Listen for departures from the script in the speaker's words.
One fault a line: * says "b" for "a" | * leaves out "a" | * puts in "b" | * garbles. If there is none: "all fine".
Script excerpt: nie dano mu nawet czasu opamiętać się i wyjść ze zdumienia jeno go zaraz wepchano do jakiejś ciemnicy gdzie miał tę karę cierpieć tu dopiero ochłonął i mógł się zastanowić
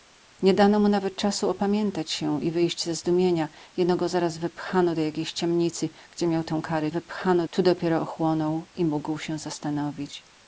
* says "wepchano" for "cierpieć"